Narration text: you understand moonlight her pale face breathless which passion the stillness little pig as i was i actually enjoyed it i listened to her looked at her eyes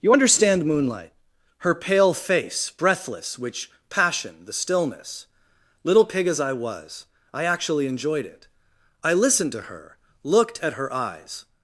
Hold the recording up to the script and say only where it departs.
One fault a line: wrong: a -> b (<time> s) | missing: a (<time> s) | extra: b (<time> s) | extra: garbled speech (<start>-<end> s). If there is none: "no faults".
no faults